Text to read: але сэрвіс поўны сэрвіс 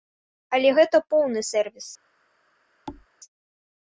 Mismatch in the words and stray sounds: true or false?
true